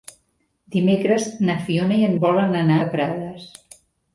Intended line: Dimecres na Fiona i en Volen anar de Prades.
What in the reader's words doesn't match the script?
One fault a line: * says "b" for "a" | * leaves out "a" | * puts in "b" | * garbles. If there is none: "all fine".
all fine